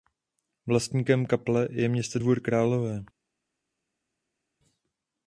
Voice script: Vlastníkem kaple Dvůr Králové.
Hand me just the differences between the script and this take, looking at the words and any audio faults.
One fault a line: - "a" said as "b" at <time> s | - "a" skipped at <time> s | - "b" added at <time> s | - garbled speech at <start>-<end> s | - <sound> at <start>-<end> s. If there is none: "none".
- "je město" added at 1.7 s